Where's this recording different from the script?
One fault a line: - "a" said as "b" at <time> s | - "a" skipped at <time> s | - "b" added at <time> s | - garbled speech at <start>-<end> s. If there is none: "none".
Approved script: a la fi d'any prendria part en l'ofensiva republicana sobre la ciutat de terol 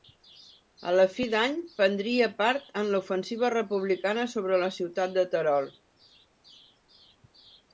none